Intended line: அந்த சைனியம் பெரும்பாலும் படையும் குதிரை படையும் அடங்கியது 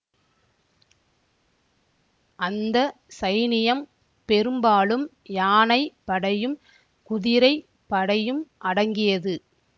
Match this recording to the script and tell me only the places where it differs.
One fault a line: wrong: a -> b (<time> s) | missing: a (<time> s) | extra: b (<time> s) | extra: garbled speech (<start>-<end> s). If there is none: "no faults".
extra: யானை (5.4 s)